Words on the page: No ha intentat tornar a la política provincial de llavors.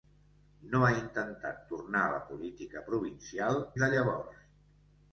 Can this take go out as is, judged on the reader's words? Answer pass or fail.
pass